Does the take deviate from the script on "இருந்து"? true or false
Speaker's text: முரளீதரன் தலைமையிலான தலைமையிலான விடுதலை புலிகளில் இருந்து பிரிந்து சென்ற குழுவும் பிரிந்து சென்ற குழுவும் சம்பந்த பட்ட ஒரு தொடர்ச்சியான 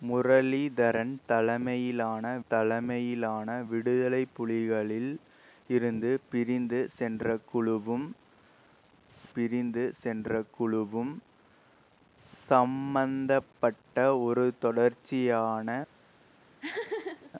false